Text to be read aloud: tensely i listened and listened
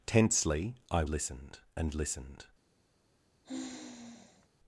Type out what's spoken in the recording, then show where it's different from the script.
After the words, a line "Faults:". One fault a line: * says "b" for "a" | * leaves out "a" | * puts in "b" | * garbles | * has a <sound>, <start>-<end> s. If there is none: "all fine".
tensely i listened and listened
Faults:
* has a sigh, 3.4-4.5 s